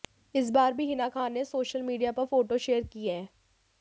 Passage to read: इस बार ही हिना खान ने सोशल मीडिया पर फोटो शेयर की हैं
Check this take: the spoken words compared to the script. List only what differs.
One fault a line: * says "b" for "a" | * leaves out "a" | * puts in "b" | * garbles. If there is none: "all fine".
* says "भी" for "ही"